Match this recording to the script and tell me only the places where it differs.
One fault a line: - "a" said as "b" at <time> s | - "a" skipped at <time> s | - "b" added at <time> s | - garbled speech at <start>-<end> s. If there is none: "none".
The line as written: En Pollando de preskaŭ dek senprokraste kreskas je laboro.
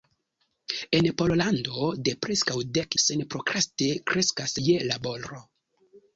none